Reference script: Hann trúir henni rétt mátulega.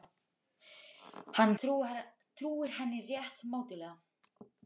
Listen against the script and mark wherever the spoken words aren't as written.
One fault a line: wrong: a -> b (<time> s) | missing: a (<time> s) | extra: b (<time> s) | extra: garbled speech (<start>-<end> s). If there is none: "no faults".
no faults